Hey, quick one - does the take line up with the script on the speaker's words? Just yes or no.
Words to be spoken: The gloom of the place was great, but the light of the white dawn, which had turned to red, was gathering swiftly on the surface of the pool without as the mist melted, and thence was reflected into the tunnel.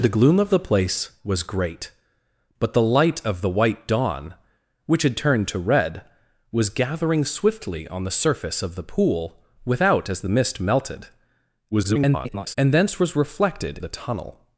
no